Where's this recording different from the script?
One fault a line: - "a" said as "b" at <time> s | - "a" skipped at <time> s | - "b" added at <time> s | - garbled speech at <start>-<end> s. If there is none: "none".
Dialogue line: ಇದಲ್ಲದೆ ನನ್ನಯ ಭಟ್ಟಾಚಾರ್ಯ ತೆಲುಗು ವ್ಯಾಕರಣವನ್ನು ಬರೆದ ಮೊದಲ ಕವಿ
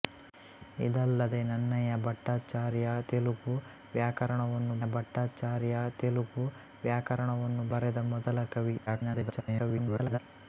- "ಭಟ್ಟಾಚಾರ್ಯ ತೆಲುಗು ವ್ಯಾಕರಣವನ್ನು" added at 4.9 s
- garbled speech at 8.9-10.2 s